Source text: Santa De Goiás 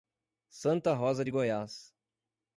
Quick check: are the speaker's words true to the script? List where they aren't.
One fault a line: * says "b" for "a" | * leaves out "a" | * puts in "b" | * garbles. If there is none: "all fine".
* puts in "Rosa"